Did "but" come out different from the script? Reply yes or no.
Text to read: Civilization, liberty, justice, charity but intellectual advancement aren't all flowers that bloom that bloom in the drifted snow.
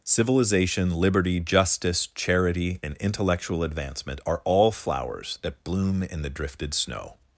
yes